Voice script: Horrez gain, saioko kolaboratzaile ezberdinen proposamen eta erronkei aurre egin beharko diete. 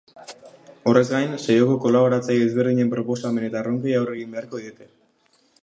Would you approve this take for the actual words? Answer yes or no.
yes